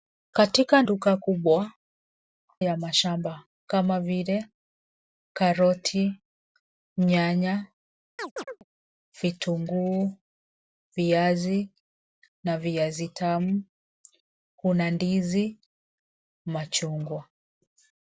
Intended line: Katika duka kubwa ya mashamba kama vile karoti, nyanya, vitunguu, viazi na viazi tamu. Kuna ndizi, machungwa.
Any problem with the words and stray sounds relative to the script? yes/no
yes